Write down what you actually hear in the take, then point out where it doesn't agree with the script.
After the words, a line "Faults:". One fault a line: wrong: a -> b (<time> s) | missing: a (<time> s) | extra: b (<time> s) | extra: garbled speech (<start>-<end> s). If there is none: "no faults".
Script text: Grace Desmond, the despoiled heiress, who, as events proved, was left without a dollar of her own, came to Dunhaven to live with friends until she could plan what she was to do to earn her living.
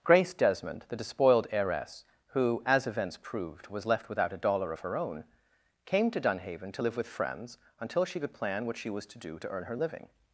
Grace Desmond, the despoiled heiress, who, as events proved, was left without a dollar of her own, came to Dunhaven to live with friends until she could plan what she was to do to earn her living.
Faults:
no faults